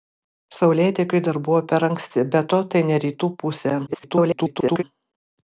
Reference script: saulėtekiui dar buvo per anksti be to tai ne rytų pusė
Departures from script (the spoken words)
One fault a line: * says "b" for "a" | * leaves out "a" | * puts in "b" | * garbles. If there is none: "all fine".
* garbles